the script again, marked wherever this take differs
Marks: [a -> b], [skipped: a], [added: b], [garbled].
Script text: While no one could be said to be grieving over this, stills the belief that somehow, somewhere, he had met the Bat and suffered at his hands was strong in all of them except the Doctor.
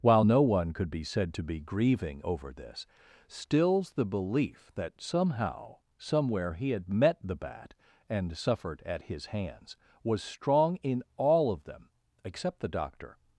While no one could be said to be grieving over this, stills the belief that somehow, somewhere, he had met the Bat and suffered at his hands was strong in all of them except the Doctor.